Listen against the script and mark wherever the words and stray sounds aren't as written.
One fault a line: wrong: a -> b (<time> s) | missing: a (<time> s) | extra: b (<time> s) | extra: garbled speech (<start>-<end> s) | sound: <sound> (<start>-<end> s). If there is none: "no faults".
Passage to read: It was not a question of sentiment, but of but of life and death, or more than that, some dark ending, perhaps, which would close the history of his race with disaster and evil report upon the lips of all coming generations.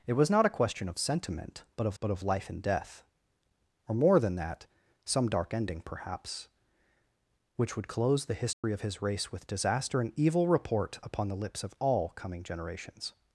sound: dropout (8.5-8.6 s)